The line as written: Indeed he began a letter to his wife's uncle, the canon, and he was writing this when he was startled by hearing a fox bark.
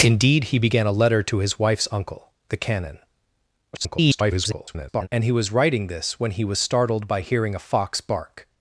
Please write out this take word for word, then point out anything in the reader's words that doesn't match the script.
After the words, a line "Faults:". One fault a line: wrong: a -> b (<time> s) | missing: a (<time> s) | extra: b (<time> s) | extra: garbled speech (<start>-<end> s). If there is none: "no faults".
Indeed he began a letter to his wife's uncle, the canon, [garbled] and he was writing this when he was startled by hearing a fox bark.
Faults:
extra: garbled speech (3.7-5.1 s)